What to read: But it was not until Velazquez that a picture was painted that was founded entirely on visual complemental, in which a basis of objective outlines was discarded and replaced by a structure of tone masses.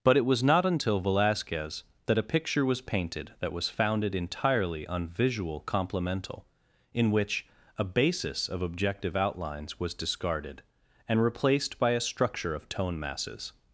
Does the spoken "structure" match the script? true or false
true